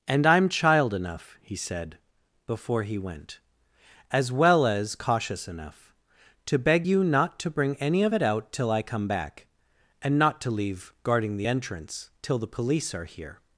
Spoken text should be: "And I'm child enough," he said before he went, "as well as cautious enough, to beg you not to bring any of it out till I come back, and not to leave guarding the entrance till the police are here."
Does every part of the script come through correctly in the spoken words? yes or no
yes